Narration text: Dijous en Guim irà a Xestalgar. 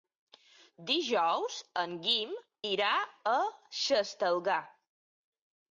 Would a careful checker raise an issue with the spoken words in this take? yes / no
no